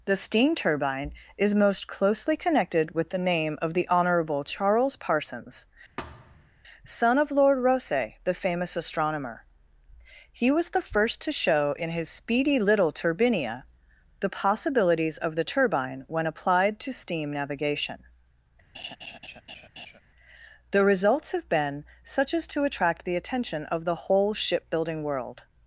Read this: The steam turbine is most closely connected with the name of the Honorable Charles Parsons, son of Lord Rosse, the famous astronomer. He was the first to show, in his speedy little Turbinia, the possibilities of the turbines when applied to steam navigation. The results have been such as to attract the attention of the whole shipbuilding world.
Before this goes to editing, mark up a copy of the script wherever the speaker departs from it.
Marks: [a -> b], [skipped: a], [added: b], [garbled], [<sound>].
The steam turbine is most closely connected with the name of the Honorable Charles Parsons, [thud] son of Lord Rosse, the famous astronomer. He was the first to show, in his speedy little Turbinia, the possibilities of the [turbines -> turbine] when applied to steam navigation. [laugh] The results have been such as to attract the attention of the whole shipbuilding world.